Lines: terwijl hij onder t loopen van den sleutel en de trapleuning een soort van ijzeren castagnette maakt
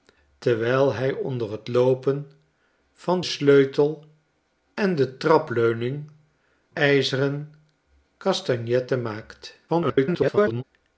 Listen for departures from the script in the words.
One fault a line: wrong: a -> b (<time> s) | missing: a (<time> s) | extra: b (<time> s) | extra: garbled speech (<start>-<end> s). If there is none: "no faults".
missing: den (3.2 s)
missing: een soort van (6.1 s)
extra: garbled speech (9.7-10.6 s)